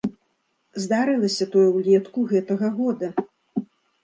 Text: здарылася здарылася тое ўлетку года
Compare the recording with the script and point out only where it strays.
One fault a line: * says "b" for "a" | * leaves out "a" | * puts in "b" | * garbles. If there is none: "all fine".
* leaves out "здарылася"
* puts in "гэтага"